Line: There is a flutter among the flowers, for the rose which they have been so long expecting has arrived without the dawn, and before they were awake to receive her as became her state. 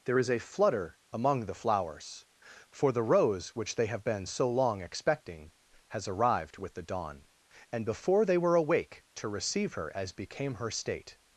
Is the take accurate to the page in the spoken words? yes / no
no